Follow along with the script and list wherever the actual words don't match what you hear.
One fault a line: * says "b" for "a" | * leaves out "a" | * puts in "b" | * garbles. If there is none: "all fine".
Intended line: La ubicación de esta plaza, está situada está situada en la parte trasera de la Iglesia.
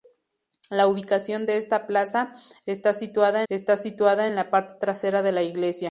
all fine